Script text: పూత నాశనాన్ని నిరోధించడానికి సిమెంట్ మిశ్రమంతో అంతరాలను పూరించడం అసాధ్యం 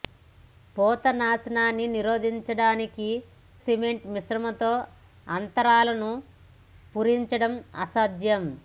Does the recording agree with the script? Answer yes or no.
yes